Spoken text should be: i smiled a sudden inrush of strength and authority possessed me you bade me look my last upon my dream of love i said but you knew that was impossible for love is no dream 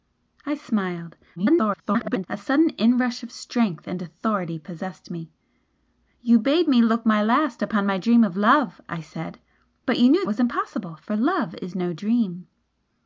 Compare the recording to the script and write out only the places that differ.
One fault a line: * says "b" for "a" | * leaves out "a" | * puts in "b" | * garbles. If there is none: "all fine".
* garbles
* leaves out "that"